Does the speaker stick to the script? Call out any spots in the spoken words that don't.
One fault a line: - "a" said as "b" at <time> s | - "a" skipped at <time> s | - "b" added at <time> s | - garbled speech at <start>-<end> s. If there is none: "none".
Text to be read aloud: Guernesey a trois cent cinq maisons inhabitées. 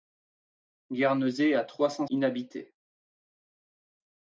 - "cinq maisons" skipped at 2.1 s